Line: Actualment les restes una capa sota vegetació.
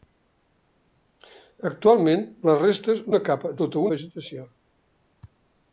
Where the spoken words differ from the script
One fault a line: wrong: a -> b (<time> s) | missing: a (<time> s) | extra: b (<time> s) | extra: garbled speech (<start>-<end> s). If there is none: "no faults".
no faults